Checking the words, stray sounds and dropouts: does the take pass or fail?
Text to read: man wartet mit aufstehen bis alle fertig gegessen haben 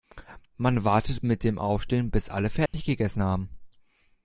fail